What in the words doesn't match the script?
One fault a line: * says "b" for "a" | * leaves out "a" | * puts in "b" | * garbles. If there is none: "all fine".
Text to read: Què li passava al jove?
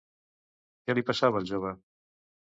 all fine